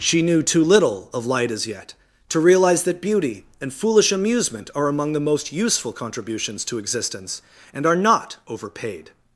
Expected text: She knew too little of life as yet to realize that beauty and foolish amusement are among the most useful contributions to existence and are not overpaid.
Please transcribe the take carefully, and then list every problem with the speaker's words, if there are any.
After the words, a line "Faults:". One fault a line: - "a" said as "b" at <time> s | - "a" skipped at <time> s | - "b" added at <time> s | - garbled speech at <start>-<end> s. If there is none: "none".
She knew too little of light as yet to realize that beauty and foolish amusement are among the most useful contributions to existence and are not overpaid.
Faults:
- "life" said as "light" at 1.3 s